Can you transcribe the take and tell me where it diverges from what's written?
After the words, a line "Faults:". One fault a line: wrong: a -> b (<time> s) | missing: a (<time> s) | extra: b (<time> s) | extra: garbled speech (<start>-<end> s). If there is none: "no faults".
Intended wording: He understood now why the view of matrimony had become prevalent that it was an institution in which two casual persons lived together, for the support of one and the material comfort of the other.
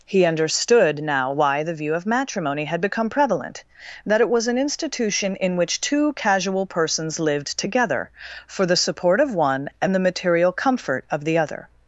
He understood now why the view of matrimony had become prevalent that it was an institution in which two casual persons lived together, for the support of one and the material comfort of the other.
Faults:
no faults